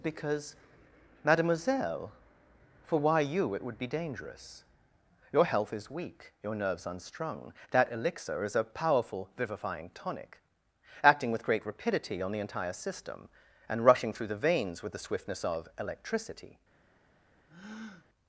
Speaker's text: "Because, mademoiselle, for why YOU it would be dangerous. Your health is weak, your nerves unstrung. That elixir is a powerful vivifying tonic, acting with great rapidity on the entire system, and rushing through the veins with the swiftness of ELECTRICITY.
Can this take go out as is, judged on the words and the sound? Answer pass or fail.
fail